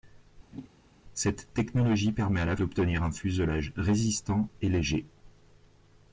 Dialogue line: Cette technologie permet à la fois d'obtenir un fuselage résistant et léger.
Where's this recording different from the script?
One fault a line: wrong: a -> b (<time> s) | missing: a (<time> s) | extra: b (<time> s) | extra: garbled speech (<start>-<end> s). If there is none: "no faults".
missing: fois (2.6 s)